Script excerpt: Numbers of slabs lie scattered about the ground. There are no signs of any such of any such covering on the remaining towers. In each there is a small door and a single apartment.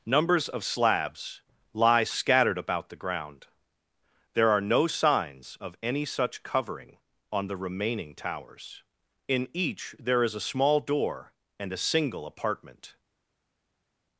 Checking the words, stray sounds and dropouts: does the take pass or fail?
fail